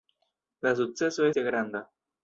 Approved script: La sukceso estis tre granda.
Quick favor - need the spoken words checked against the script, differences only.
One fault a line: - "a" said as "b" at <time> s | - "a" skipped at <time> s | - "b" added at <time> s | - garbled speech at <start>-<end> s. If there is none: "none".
- "estis" skipped at 1.3 s